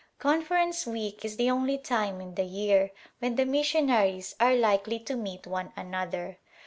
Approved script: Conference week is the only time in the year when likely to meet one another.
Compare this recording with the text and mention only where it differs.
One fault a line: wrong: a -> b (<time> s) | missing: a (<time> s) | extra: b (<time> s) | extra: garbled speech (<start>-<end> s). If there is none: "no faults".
extra: the missionaries are (3.3 s)